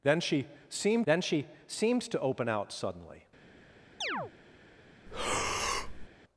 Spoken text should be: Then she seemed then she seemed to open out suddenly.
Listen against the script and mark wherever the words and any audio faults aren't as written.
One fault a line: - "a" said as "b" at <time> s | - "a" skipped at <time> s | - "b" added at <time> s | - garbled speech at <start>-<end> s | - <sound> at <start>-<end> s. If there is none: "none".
- chirp at 4.0-4.3 s
- breath at 5.1-6.1 s